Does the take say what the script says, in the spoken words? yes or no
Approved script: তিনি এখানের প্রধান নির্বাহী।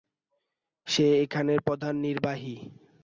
no